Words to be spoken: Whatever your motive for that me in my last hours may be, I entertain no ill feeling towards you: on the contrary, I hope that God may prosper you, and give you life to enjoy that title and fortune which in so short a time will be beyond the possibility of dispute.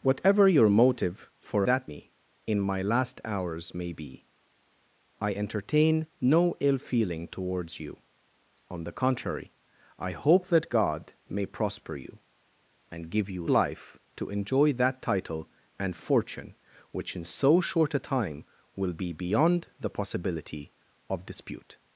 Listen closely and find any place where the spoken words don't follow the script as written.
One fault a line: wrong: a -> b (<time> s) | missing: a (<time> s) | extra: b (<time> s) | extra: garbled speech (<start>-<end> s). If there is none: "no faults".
no faults